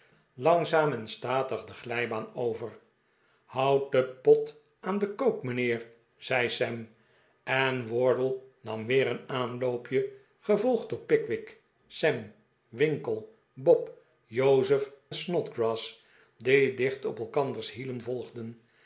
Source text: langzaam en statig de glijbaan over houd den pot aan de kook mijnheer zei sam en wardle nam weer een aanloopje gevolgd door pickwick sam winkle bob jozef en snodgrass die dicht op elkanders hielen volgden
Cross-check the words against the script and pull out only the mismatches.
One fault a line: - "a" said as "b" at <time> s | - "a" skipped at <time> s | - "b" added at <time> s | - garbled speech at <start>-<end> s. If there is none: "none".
- "en" skipped at 14.9 s